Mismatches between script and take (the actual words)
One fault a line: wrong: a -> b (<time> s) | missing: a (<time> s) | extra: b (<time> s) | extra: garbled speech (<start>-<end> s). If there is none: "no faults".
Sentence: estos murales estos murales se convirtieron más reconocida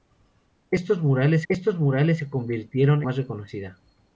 no faults